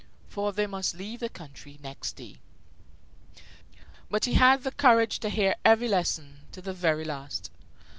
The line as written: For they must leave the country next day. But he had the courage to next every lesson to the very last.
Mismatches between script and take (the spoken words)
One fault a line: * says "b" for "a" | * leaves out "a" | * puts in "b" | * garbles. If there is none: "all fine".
* says "hear" for "next"